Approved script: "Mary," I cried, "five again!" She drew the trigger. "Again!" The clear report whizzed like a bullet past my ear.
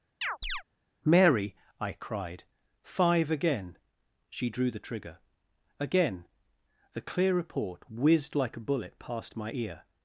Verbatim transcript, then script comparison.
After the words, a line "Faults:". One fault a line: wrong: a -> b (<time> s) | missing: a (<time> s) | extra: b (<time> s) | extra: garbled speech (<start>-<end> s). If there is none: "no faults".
"Mary," I cried, "five again!" She drew the trigger. "Again!" The clear report whizzed like a bullet past my ear.
Faults:
no faults